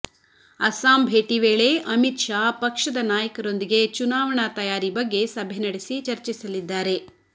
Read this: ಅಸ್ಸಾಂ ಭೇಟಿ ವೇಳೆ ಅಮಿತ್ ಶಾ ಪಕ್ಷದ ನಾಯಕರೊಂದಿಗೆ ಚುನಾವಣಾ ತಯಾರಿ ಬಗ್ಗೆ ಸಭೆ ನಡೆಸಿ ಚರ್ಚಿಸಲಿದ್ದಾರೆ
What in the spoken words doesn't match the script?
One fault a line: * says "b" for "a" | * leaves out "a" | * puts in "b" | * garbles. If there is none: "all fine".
all fine